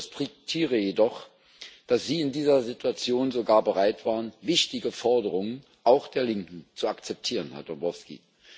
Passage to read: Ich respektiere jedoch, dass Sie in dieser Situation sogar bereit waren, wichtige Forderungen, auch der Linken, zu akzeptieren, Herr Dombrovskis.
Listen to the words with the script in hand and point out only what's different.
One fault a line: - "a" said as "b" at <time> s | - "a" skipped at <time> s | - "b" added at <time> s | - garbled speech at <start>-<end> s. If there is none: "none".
none